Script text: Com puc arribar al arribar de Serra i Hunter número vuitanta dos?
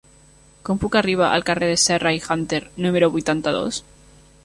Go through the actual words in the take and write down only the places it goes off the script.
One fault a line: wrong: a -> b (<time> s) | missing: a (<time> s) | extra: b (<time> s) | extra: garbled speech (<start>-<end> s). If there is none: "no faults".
wrong: arribar -> carrer (1.5 s)